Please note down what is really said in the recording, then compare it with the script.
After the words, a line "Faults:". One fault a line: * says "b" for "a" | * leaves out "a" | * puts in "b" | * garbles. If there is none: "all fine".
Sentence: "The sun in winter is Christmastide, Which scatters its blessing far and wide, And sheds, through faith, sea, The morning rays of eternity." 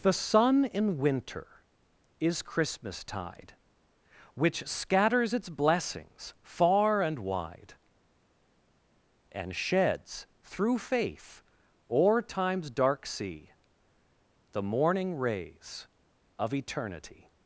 "The sun in winter is Christmastide, Which scatters its blessings far and wide, And sheds, through faith, o'er time's dark sea, The morning rays of eternity."
Faults:
* says "blessings" for "blessing"
* puts in "o'er time's dark"